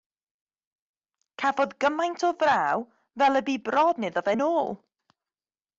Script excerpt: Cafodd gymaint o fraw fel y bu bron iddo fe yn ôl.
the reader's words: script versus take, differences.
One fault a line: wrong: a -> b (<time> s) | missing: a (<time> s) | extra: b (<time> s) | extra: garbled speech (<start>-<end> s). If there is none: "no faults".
no faults